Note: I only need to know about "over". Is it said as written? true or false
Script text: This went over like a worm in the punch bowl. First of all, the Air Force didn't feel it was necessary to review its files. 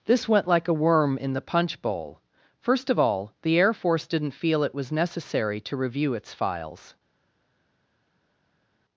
false